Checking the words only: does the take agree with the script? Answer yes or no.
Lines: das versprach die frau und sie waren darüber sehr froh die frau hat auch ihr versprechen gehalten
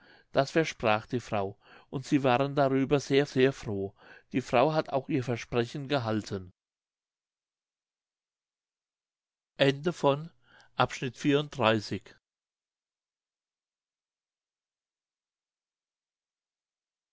no